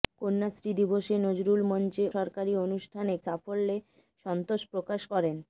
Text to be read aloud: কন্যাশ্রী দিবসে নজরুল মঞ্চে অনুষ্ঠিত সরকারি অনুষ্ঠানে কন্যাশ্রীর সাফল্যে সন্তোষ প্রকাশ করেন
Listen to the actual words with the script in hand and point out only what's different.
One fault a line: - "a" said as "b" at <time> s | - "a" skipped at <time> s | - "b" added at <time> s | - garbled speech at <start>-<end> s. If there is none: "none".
- "অনুষ্ঠিত" skipped at 2.0 s
- "কন্যাশ্রীর" skipped at 3.1 s